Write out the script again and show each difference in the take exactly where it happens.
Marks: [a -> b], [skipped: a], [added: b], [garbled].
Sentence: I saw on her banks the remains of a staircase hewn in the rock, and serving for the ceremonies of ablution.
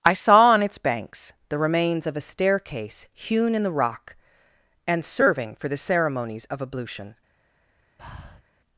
I saw on [her -> its] banks the remains of a staircase hewn in the rock, and serving for the ceremonies of ablution.